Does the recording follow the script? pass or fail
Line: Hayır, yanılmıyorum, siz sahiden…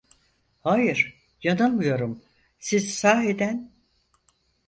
pass